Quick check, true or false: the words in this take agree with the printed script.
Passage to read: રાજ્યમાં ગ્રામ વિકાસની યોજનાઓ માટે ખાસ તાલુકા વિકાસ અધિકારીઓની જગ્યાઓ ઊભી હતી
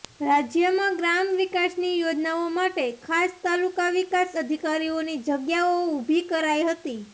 false